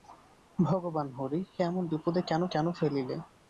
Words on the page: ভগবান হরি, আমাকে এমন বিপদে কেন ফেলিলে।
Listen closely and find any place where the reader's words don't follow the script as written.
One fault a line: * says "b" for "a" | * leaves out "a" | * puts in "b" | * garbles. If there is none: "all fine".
* leaves out "আমাকে"
* puts in "কেন"